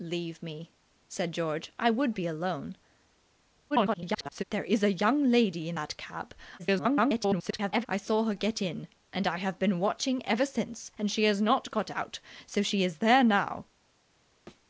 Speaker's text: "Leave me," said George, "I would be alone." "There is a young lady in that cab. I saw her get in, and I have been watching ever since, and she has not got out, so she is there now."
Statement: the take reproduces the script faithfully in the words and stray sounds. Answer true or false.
false